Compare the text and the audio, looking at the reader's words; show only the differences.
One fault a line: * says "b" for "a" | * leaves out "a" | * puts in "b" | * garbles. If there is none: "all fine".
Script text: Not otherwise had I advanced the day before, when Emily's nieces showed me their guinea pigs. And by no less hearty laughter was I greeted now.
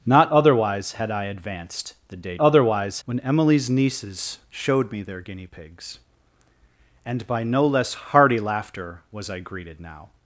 * says "otherwise" for "before"